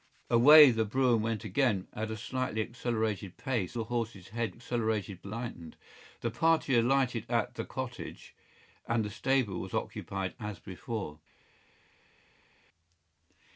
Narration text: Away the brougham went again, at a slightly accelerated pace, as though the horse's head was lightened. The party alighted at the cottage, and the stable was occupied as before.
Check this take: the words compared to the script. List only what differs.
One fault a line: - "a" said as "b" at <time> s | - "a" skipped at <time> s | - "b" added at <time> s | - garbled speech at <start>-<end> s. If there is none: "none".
- "as though" skipped at 3.8 s
- "was" said as "accelerated" at 4.5 s